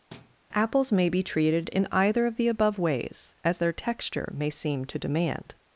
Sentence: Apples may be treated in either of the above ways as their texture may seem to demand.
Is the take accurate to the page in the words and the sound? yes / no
no